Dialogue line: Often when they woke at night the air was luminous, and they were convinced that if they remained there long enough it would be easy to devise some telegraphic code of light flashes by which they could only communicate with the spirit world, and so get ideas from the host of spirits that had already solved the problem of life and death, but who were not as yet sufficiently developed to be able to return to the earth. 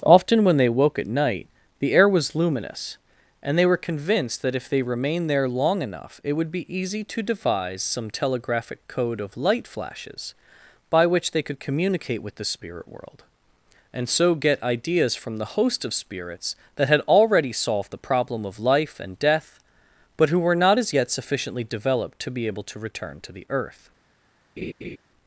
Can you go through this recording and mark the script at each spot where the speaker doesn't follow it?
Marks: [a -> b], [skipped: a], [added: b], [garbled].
Often when they woke at night the air was luminous, and they were convinced that if they remained there long enough it would be easy to devise some telegraphic code of light flashes by which they could [skipped: only] communicate with the spirit world, and so get ideas from the host of spirits that had already solved the problem of life and death, but who were not as yet sufficiently developed to be able to return to the earth.